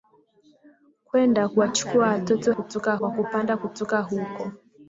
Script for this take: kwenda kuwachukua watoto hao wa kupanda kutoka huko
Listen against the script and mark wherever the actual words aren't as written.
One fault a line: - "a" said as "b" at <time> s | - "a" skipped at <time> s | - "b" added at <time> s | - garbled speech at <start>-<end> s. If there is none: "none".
- "hao" said as "kutoka" at 2.5 s